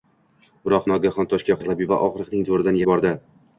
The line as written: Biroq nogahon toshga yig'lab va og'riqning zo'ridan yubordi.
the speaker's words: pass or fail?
pass